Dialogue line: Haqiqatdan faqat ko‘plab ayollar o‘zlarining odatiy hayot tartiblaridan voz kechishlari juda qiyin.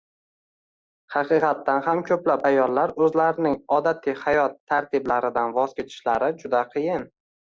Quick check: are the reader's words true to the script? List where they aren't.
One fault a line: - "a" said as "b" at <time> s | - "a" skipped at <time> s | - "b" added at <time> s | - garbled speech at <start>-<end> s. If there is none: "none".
- "faqat" said as "ham" at 1.9 s